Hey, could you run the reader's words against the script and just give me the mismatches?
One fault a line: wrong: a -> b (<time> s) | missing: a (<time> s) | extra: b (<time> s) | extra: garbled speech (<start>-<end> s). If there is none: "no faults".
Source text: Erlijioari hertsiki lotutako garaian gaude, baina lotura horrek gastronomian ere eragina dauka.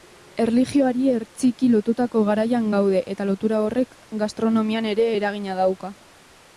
wrong: baina -> eta (3.2 s)